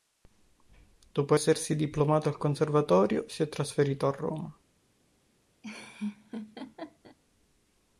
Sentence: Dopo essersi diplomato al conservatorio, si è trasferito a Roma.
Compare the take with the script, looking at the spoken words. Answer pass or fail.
pass